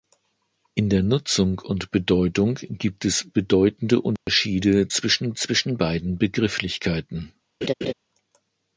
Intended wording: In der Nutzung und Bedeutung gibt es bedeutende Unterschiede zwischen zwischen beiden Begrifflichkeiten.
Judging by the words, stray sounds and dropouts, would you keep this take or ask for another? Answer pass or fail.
fail